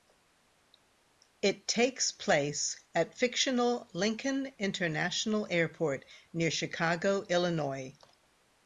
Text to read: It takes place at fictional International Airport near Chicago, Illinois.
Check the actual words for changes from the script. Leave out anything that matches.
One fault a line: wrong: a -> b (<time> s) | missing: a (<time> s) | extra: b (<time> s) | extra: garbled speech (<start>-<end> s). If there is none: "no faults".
extra: Lincoln (3.9 s)